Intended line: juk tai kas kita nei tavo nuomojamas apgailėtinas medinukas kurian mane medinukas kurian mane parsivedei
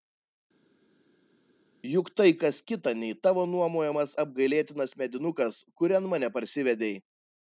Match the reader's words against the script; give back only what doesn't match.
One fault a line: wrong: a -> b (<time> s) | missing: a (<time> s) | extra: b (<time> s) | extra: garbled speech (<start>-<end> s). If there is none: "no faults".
missing: medinukas kurian mane (6.3 s)